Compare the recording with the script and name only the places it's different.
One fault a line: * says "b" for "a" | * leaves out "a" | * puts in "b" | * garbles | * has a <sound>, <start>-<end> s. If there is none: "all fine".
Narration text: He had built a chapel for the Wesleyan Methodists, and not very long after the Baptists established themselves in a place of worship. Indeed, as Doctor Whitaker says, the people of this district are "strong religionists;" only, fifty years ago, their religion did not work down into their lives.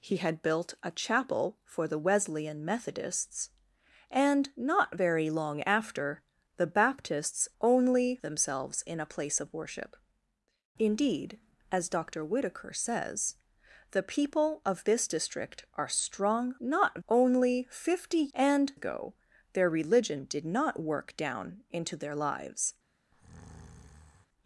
* says "only" for "established"
* says "not" for "religionists"
* says "and" for "years"
* has a breath, 23.1-24.3 s